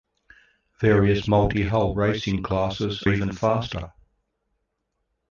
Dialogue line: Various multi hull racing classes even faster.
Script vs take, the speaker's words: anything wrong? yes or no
no